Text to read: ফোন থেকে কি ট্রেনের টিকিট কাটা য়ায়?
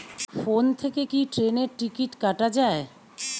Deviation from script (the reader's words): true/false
false